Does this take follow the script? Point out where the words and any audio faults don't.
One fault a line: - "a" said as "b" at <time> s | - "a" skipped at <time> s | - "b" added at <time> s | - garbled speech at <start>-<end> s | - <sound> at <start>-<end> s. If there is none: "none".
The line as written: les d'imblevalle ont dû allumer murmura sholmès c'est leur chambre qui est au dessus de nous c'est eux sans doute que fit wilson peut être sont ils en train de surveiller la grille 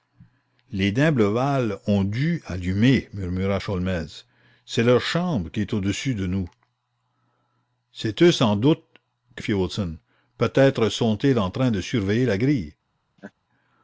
- laugh at 13.2-13.3 s